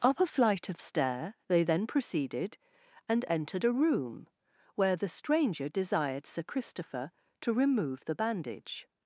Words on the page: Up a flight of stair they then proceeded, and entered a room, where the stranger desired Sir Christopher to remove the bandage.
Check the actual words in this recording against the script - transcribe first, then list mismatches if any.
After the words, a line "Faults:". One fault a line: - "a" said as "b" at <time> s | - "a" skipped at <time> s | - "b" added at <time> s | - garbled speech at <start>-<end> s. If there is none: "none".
Up a flight of stair they then proceeded, and entered a room, where the stranger desired Sir Christopher to remove the bandage.
Faults:
none